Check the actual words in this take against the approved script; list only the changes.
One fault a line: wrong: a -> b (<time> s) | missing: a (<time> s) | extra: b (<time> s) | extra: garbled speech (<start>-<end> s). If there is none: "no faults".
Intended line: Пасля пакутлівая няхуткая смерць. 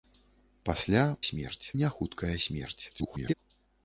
wrong: пакутлівая -> смерць (1.3 s)
extra: garbled speech (2.9-3.3 s)